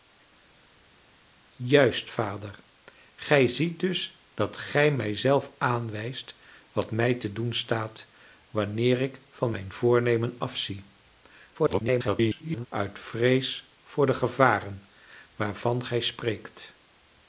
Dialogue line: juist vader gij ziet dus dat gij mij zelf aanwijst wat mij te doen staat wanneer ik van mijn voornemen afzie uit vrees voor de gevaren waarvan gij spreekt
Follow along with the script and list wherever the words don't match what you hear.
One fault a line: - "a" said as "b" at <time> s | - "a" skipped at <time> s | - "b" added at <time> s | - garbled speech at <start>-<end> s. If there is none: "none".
- garbled speech at 11.5-12.7 s